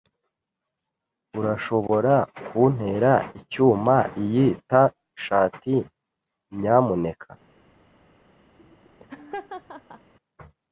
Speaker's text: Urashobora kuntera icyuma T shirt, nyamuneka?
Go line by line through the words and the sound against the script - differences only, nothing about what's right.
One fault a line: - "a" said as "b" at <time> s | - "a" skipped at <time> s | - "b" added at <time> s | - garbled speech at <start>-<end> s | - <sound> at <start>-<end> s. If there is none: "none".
- "iyi" added at 4.2 s
- laugh at 8.6-10.1 s